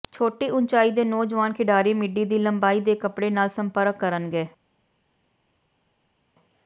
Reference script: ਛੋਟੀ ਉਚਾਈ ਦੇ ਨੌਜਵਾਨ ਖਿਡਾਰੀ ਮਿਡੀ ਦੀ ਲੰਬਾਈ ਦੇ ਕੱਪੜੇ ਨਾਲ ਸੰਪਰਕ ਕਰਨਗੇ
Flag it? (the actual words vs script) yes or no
no